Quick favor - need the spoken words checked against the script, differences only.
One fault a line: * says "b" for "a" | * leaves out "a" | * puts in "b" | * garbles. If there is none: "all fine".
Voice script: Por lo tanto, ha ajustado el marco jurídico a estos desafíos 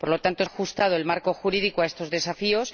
all fine